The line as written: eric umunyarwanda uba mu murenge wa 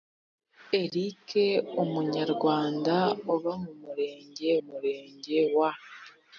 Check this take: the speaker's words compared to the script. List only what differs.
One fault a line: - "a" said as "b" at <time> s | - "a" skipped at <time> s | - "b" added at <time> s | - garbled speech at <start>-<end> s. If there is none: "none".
- "murenge" added at 4.7 s